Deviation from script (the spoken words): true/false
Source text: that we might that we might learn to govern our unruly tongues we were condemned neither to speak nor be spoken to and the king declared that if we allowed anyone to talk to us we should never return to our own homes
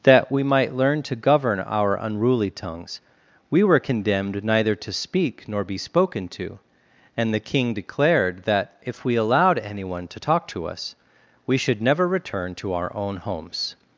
true